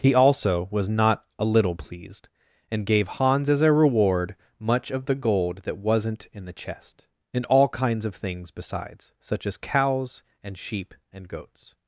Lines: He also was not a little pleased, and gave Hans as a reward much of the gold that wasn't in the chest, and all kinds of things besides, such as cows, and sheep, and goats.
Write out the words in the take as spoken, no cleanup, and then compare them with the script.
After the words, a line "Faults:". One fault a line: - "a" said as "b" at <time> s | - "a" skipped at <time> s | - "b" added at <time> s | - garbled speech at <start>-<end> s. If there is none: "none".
He also was not a little pleased, and gave Hans as a reward much of the gold that wasn't in the chest, and all kinds of things besides, such as cows, and sheep, and goats.
Faults:
none